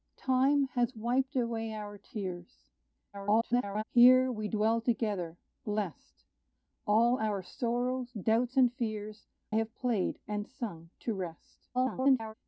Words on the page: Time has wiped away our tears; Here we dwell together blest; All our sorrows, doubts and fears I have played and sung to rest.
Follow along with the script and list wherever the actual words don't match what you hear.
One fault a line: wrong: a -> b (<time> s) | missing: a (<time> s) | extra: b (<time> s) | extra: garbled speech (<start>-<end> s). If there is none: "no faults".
extra: garbled speech (3.1-3.8 s)
missing: I (9.3 s)
extra: garbled speech (11.7-12.3 s)